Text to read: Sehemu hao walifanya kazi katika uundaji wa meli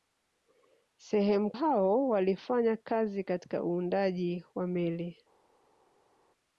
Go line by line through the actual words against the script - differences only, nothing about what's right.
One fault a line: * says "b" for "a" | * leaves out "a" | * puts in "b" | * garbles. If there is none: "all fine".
all fine